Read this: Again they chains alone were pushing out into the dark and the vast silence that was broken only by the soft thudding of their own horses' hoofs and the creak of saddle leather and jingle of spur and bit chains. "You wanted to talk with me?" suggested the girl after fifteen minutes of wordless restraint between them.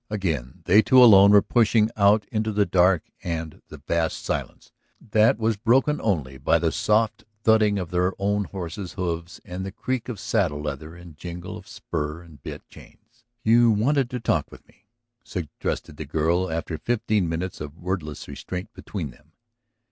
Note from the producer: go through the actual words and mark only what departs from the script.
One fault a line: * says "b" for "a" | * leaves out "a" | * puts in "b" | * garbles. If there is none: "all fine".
* says "two" for "chains"